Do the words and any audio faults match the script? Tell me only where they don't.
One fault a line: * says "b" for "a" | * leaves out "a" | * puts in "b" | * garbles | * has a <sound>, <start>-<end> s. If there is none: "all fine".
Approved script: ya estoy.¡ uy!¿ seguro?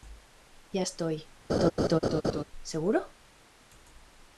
* leaves out "uy"
* has a laugh, 1.5-2.4 s